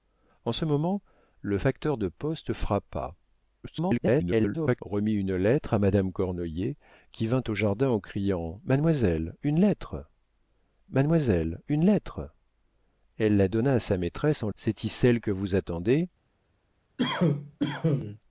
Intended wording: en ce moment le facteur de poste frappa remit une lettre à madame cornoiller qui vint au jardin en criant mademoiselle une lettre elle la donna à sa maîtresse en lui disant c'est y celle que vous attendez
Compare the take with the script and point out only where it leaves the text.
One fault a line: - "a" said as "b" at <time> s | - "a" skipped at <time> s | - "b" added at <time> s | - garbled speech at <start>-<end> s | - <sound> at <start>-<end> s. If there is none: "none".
- garbled speech at 3.6-4.8 s
- "mademoiselle une lettre" added at 10.9 s
- "lui disant" skipped at 14.5 s
- cough at 17.0-18.2 s